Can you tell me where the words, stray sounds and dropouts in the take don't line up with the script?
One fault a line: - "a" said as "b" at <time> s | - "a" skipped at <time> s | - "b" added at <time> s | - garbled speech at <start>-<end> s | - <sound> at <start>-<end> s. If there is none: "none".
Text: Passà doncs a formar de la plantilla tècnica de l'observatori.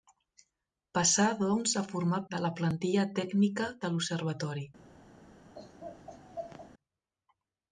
- laugh at 5.5-6.7 s